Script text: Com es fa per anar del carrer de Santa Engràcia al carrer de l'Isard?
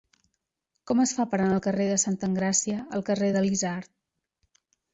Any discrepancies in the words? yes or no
no